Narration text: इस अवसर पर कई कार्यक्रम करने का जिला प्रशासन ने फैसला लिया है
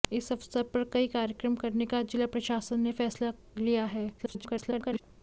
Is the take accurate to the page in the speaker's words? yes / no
no